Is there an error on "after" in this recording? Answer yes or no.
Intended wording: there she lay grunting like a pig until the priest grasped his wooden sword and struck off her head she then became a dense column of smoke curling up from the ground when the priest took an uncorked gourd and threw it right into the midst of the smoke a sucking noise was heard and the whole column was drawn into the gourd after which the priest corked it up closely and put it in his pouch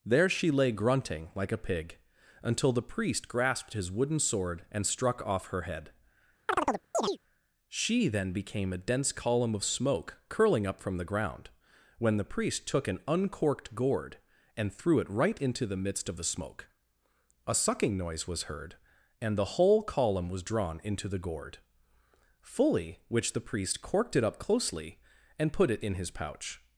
yes